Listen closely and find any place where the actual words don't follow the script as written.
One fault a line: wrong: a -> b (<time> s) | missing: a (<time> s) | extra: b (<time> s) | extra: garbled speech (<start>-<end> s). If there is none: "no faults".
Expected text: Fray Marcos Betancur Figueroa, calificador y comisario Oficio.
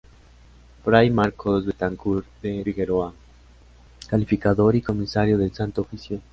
extra: de (2.4 s)
extra: del Santo (5.4 s)